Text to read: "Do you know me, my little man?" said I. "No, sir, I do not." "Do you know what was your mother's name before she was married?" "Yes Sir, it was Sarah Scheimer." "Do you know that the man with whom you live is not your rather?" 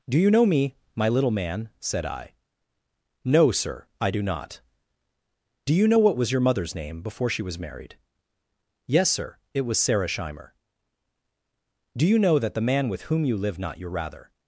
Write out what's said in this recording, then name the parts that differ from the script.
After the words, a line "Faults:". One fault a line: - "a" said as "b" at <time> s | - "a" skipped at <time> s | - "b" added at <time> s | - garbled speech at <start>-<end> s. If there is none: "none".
"Do you know me, my little man?" said I. "No, sir, I do not." "Do you know what was your mother's name before she was married?" "Yes Sir, it was Sarah Scheimer." "Do you know that the man with whom you live not your rather?"
Faults:
- "is" skipped at 13.6 s